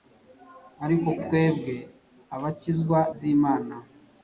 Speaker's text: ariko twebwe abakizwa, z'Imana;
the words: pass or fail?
pass